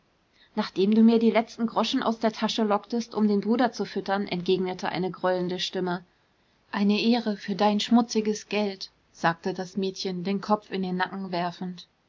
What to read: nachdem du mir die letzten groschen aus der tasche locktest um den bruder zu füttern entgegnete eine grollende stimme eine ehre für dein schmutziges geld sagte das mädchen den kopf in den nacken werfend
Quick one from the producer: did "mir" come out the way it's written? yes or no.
yes